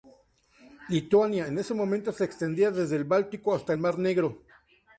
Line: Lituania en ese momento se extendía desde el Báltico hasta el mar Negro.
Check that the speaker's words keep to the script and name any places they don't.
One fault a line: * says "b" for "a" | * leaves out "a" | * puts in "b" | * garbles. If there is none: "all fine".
all fine